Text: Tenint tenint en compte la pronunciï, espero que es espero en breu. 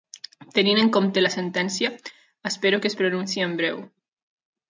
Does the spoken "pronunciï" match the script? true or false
false